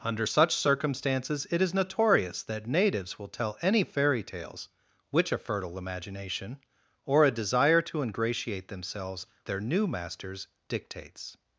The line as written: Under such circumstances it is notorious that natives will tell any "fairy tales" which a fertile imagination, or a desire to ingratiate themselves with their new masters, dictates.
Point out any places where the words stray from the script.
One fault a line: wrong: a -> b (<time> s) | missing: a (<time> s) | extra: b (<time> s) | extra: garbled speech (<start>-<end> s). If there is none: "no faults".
missing: with (9.3 s)